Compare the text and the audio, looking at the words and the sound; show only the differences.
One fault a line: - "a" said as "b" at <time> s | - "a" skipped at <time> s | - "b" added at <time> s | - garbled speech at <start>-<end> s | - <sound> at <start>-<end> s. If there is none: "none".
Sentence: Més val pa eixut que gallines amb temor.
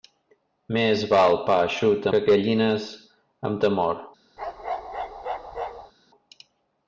- bark at 4.4-5.9 s